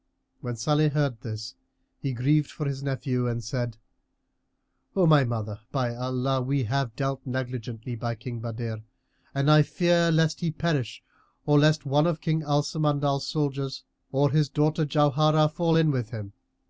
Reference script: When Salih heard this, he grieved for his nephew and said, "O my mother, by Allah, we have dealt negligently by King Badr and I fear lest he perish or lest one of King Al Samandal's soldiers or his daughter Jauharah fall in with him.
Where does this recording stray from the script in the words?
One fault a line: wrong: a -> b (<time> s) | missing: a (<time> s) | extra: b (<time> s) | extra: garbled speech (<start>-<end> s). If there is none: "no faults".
no faults